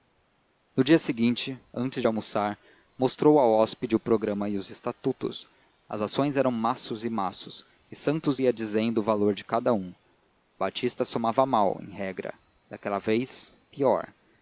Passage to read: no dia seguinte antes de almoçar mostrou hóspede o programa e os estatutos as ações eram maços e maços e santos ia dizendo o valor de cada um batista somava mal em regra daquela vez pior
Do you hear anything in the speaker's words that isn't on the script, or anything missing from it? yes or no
yes